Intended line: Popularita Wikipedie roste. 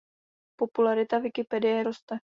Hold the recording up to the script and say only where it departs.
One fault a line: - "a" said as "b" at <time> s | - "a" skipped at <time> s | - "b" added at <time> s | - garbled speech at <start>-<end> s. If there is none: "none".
none